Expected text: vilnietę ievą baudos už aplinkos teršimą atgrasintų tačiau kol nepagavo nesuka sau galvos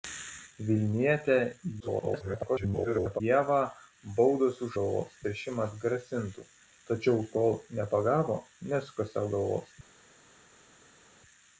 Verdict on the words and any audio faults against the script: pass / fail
fail